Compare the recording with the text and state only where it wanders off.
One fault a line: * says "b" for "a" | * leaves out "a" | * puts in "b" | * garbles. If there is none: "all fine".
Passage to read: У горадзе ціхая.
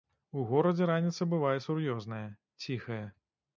* puts in "раніца бывае сур'ёзная"